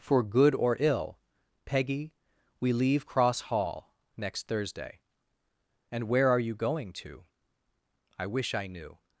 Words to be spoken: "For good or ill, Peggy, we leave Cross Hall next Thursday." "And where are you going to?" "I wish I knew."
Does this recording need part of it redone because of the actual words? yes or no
no